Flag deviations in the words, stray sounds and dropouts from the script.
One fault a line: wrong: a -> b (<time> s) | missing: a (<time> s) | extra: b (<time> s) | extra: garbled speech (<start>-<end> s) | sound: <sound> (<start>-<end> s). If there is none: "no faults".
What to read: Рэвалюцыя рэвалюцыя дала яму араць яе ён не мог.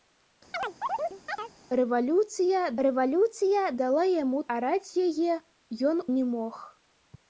sound: chirp (0.5-1.5 s)